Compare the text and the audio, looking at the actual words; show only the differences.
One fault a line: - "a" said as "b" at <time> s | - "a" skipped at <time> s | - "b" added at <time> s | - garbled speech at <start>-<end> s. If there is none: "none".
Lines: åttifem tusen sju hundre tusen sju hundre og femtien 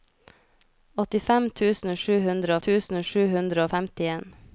none